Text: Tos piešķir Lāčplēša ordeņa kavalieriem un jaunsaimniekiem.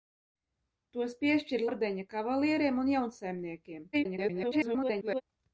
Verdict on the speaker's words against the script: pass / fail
fail